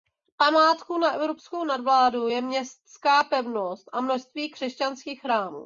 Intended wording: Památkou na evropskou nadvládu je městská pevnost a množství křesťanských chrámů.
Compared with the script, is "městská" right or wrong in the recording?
right